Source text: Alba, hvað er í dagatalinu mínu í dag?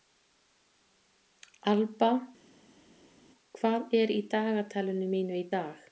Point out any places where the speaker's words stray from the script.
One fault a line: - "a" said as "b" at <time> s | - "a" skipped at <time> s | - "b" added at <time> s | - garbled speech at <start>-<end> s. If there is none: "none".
none